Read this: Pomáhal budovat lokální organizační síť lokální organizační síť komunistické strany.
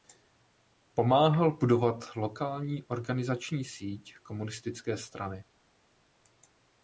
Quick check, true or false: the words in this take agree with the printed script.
false